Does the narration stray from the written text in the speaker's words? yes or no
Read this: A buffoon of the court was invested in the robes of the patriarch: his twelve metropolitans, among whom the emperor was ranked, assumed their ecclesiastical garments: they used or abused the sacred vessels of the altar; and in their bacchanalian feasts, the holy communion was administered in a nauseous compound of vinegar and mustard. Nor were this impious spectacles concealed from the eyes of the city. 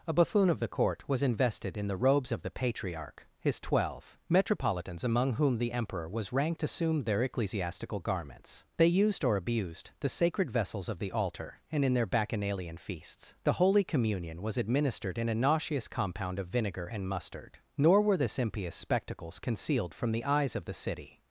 no